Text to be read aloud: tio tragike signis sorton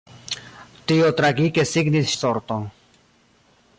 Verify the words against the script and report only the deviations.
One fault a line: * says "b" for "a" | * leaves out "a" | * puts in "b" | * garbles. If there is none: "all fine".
all fine